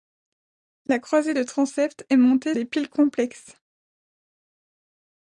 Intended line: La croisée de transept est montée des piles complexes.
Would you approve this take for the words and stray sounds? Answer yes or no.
yes